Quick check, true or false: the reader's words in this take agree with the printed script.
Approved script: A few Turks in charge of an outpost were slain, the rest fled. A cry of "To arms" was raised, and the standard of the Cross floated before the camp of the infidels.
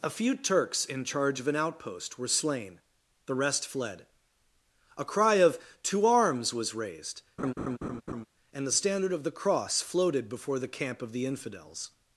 true